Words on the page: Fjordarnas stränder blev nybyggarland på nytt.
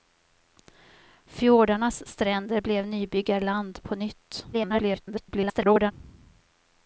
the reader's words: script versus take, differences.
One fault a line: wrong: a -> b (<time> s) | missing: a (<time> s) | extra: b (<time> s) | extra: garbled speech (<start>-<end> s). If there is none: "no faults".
extra: garbled speech (4.5-5.9 s)